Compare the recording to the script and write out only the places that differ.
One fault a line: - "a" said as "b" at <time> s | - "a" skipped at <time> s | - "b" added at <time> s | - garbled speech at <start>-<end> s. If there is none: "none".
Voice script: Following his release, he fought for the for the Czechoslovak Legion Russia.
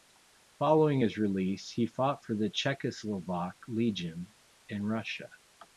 - "for the" skipped at 2.5 s
- "in" added at 4.7 s